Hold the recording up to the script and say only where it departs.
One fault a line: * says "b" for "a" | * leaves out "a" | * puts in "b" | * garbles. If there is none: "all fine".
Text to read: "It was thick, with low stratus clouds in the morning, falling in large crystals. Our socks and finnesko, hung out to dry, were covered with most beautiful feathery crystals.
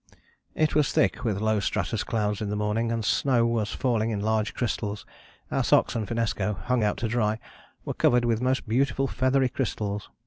* puts in "and snow was"